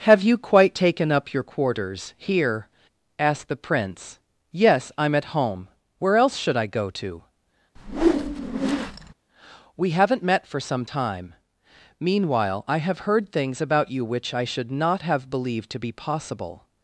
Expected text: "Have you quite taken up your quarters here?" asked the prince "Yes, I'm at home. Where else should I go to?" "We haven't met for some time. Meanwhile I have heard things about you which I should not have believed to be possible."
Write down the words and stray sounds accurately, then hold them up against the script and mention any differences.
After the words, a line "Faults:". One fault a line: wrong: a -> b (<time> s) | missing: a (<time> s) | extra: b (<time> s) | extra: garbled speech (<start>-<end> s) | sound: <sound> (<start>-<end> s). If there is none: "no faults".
"Have you quite taken up your quarters here?" asked the prince "Yes, I'm at home. Where else should I go to?" "We haven't met for some time. Meanwhile I have heard things about you which I should not have believed to be possible."
Faults:
sound: whoosh (7.8-9.1 s)